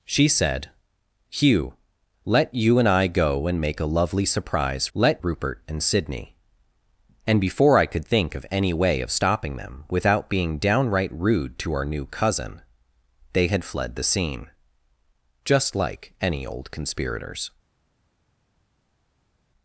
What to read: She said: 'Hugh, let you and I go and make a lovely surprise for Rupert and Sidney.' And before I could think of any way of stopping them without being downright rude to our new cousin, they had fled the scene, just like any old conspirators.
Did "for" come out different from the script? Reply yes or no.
yes